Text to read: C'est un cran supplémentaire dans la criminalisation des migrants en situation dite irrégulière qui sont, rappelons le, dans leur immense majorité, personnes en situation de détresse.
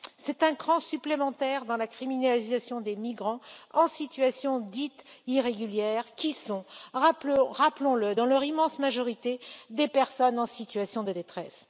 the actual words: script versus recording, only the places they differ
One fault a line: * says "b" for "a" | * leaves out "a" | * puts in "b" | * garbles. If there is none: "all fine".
* puts in "des"